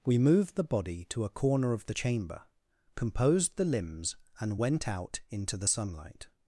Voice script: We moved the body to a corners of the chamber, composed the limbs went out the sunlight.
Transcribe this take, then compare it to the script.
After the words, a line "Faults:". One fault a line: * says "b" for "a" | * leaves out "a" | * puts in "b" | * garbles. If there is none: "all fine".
We moved the body to a corner of the chamber, composed the limbs and went out into the sunlight.
Faults:
* says "corner" for "corners"
* puts in "and"
* puts in "into"